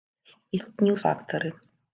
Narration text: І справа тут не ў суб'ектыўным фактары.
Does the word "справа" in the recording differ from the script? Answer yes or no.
yes